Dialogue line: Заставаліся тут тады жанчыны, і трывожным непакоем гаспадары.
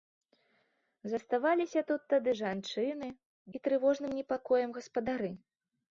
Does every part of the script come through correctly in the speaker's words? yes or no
yes